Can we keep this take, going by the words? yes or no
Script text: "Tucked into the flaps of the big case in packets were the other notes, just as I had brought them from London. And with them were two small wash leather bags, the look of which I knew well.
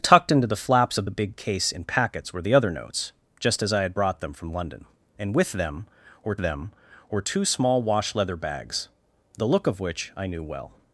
no